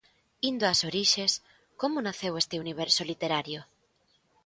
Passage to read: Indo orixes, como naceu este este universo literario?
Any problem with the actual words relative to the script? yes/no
yes